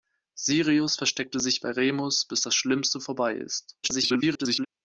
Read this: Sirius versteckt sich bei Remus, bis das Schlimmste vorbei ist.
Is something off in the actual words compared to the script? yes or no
yes